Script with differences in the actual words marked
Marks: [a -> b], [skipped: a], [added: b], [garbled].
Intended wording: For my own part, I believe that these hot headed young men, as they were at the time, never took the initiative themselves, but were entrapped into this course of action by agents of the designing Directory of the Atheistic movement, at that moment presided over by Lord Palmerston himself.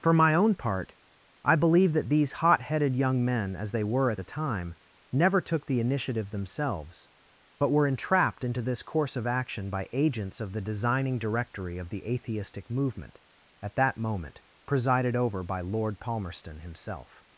For my own part, I believe that these hot headed young men, as they were at the time, never took the initiative themselves, but were entrapped into this course of action by agents of the designing Directory of the Atheistic movement, at that moment presided over by Lord Palmerston himself.